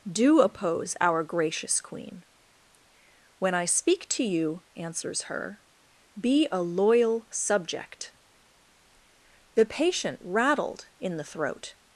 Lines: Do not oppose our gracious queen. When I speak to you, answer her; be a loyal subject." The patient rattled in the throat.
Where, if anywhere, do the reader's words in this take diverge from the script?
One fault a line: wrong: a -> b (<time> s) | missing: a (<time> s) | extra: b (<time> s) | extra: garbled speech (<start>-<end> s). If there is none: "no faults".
missing: not (0.4 s)
wrong: answer -> answers (4.8 s)